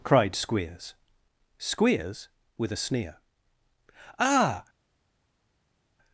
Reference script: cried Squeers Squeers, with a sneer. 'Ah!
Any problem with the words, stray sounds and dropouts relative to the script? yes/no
no